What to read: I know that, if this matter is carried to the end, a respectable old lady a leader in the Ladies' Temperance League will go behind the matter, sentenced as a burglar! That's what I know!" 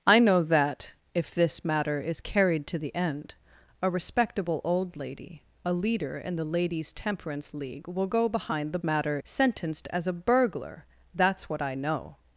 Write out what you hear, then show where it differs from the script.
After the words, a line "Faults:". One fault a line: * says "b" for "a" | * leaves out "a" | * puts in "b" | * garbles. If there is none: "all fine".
I know that, if this matter is carried to the end, a respectable old lady a leader in the Ladies' Temperance League will go behind the matter, sentenced as a burglar! That's what I know!"
Faults:
all fine